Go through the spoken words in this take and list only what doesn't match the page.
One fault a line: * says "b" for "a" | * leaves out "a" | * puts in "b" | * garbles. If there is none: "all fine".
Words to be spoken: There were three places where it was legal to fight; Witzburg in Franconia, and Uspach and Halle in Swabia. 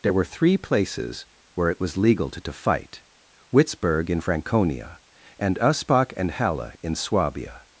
* puts in "to"